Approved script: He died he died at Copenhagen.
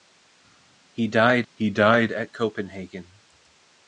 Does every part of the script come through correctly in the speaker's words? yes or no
yes